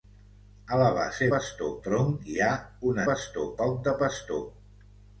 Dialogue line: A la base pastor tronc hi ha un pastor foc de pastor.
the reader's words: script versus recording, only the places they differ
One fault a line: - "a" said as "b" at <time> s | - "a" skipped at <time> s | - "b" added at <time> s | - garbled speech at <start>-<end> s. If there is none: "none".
none